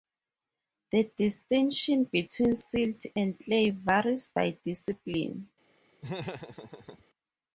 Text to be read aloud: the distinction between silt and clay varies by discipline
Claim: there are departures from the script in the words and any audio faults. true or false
true